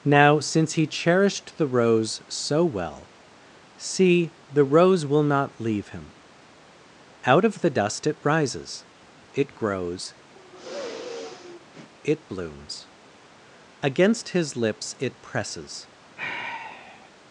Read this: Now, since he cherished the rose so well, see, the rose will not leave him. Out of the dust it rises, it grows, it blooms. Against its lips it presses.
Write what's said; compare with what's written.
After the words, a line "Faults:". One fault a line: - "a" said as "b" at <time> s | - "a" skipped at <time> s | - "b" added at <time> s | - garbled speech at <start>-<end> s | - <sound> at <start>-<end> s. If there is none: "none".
Now, since he cherished the rose so well, see, the rose will not leave him. Out of the dust it rises, it grows, it blooms. Against his lips it presses.
Faults:
- sigh at 10.3-11.9 s
- "its" said as "his" at 14.3 s
- sigh at 16.2-17.1 s